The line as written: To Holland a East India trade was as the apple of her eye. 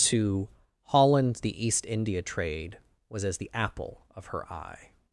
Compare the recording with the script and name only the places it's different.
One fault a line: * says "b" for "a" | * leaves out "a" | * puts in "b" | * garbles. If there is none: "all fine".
* says "the" for "a"